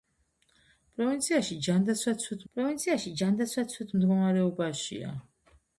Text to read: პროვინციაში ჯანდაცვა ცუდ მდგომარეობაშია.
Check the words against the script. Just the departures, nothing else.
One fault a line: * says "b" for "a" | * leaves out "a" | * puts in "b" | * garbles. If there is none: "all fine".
* puts in "პროვინციაში ჯანდაცვა ცუდ"